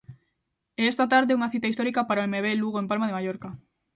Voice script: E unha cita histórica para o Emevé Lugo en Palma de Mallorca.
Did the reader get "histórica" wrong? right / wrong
right